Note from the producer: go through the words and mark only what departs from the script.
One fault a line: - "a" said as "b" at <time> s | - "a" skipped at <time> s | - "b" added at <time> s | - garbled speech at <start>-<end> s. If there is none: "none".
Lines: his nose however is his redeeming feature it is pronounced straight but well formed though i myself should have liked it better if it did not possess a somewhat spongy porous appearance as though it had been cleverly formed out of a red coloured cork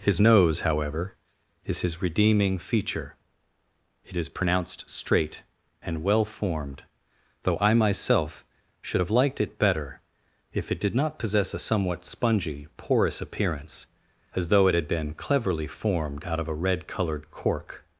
- "but" said as "and" at 5.8 s